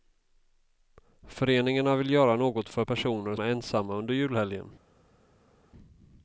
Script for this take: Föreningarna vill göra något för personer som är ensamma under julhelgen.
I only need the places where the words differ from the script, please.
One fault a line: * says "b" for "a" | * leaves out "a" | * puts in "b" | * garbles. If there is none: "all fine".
* leaves out "som"